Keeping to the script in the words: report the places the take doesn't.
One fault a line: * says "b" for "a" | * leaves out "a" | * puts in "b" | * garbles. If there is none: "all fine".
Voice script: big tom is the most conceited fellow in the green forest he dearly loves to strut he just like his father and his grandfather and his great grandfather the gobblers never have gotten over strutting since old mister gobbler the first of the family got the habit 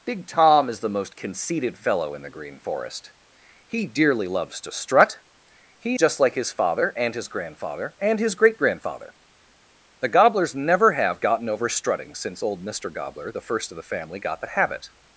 all fine